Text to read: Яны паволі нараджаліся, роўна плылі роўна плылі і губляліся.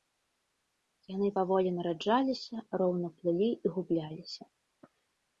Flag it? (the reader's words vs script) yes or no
yes